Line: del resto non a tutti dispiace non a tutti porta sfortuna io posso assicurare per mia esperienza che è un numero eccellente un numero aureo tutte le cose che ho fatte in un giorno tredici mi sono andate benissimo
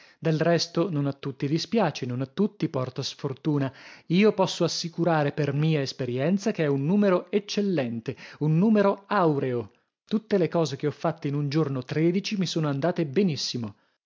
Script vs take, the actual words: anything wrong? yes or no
no